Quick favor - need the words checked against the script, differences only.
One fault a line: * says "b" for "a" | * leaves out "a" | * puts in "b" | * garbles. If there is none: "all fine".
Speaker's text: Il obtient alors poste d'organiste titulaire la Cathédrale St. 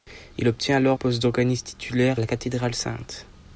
all fine